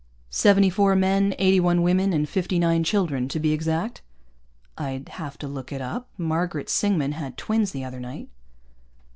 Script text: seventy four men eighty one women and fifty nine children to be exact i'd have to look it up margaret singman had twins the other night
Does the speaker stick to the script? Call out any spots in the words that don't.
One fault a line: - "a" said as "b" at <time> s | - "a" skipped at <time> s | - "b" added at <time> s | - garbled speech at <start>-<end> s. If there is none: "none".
none